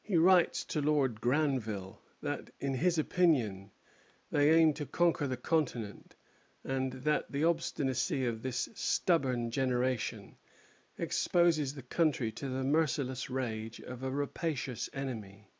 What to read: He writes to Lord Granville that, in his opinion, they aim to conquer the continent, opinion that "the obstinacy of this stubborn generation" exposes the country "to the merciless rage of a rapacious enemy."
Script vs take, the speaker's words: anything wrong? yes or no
yes